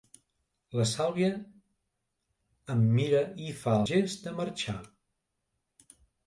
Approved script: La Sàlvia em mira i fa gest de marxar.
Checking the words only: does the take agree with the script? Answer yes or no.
yes